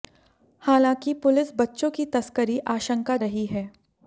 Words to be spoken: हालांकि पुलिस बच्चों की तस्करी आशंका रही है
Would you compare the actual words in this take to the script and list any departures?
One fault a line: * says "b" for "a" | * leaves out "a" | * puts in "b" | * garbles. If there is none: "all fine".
all fine